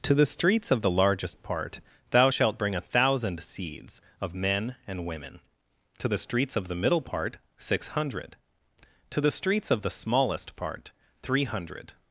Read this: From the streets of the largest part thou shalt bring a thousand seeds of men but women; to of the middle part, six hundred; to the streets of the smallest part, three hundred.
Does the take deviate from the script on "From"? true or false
true